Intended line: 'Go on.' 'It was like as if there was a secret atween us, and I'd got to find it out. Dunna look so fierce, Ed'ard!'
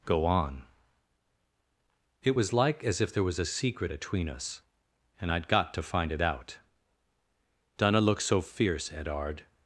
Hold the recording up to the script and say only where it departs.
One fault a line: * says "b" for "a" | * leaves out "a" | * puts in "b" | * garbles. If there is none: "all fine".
all fine